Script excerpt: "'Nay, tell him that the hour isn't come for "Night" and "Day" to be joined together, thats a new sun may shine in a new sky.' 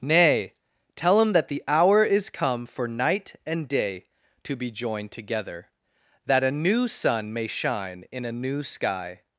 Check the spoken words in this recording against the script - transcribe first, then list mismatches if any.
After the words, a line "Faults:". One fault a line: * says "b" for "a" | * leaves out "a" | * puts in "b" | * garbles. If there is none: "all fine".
"'Nay, tell him that the hour is come for "Night" and "Day" to be joined together, that a new sun may shine in a new sky.'
Faults:
* says "is" for "isn't"
* says "that" for "thats"